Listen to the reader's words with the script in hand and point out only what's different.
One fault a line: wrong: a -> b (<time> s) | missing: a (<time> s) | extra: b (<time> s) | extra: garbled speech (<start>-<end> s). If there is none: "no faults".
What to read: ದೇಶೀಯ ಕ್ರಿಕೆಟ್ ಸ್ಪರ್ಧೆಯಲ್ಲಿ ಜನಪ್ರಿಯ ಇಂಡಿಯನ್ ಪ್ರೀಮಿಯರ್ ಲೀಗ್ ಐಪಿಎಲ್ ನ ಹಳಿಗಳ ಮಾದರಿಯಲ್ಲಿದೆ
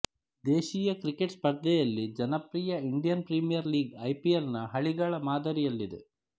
no faults